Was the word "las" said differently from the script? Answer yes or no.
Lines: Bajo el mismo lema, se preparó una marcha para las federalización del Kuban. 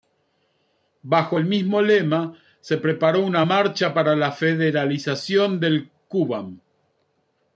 yes